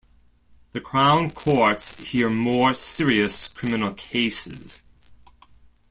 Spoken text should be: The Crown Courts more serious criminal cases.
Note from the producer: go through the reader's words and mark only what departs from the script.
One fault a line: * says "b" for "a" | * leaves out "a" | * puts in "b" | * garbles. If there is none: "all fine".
* puts in "hear"